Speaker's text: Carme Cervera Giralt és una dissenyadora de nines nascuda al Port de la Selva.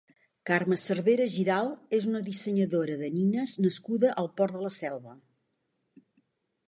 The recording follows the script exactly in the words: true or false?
true